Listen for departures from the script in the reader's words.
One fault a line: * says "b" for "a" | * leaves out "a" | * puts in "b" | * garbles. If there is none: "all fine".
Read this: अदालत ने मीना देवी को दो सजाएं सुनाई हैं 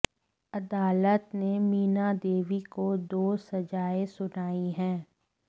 all fine